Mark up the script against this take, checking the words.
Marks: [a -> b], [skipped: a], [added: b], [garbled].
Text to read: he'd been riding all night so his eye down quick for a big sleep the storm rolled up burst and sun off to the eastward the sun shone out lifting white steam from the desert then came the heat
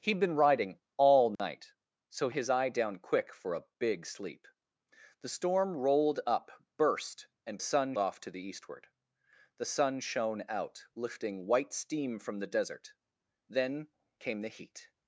he'd been riding all night so his eye down quick for a big sleep the storm rolled up burst and sun off to the eastward the sun shone out lifting white steam from the desert then came the heat